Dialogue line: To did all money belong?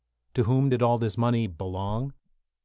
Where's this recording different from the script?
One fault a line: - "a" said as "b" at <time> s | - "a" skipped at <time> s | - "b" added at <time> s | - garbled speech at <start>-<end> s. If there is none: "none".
- "whom" added at 0.5 s
- "this" added at 1.0 s